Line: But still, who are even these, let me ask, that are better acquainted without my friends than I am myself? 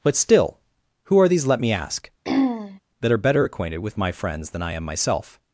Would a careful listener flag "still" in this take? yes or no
no